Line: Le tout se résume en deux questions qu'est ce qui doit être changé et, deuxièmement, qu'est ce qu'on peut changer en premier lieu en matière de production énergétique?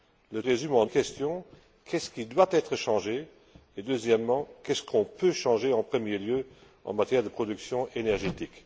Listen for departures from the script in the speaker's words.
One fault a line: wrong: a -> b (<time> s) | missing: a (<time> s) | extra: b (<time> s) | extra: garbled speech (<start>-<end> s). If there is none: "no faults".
missing: tout se (0.4 s)
missing: deux (0.9 s)